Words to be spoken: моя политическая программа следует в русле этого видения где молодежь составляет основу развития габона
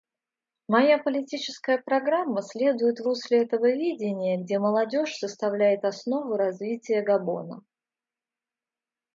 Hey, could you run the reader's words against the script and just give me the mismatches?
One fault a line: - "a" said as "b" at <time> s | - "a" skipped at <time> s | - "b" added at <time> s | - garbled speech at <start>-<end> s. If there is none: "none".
none